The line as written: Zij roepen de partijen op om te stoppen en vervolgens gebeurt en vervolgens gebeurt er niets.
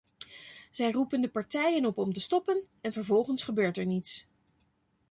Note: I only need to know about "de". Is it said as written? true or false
true